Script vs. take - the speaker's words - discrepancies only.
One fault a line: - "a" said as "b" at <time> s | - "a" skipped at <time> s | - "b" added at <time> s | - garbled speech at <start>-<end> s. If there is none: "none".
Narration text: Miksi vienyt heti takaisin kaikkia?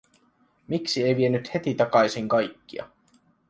- "ei" added at 1.0 s